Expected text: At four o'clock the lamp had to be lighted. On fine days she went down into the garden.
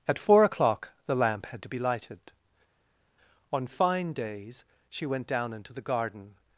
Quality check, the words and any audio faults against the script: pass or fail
pass